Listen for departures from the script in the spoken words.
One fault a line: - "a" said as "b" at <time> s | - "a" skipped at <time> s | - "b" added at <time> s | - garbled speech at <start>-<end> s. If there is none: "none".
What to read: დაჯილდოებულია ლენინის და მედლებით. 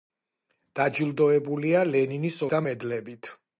none